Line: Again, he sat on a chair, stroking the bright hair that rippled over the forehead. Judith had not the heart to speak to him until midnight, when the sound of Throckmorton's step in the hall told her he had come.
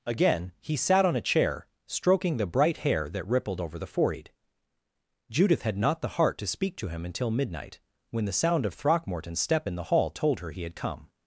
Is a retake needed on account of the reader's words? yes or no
no